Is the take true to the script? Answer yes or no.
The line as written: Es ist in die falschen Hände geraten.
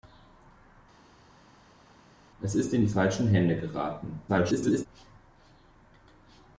no